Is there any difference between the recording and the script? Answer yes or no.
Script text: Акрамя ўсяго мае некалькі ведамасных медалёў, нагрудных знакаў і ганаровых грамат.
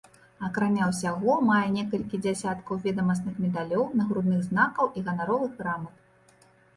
yes